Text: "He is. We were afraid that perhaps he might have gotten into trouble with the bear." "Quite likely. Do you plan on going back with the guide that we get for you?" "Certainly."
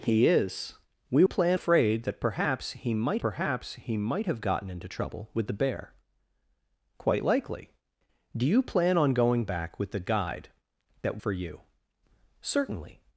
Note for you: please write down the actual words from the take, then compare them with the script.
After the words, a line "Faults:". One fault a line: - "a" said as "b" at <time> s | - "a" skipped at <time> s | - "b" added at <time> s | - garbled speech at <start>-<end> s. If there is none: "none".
"He is. We plan afraid that perhaps he might perhaps he might have gotten into trouble with the bear." "Quite likely. Do you plan on going back with the guide that for you?" "Certainly."
Faults:
- "were" said as "plan" at 1.3 s
- "perhaps he might" added at 3.2 s
- "we get" skipped at 11.2 s